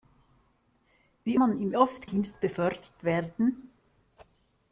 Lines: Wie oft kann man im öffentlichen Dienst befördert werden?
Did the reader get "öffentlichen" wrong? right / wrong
wrong